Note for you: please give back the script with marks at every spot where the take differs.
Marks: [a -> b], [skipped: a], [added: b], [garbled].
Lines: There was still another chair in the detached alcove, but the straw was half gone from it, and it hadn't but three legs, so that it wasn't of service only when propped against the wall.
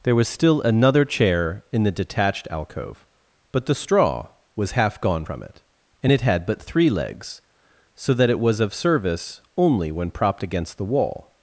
There was still another chair in the detached alcove, but the straw was half gone from it, and it [hadn't -> had] but three legs, so that it [wasn't -> was] of service only when propped against the wall.